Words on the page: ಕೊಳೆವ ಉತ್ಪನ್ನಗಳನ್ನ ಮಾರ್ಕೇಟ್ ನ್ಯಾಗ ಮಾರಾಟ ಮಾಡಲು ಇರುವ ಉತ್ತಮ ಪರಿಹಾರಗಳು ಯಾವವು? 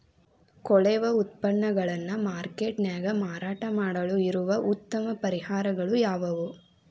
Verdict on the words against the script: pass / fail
pass